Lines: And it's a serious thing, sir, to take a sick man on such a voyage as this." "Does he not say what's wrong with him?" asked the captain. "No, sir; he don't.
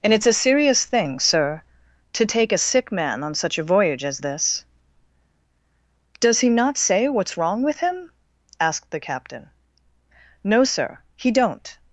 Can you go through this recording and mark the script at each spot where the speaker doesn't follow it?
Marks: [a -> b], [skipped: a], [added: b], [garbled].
And it's a serious thing, sir, to take a sick man on such a voyage as this." "Does he not say what's wrong with him?" asked the captain. "No, sir; he don't.